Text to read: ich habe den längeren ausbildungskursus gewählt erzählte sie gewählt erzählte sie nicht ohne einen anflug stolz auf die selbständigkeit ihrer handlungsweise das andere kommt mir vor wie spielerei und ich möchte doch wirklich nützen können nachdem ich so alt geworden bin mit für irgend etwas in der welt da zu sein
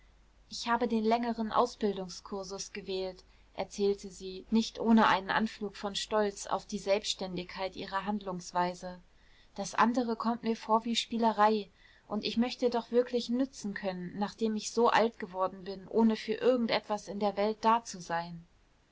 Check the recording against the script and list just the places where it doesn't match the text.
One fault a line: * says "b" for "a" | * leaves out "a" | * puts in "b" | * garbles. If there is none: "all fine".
* leaves out "gewählt erzählte sie"
* puts in "von"
* says "ohne" for "mit"